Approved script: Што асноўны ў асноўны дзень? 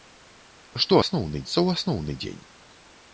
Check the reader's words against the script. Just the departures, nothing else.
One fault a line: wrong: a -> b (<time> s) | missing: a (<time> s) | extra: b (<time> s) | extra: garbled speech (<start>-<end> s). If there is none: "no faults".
no faults